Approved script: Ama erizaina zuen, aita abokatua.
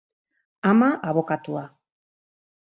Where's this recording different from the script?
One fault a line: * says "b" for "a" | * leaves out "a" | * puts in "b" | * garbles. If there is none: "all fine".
* leaves out "erizaina zuen aita"